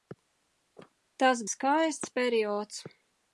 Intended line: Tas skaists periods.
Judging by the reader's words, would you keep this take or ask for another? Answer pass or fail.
pass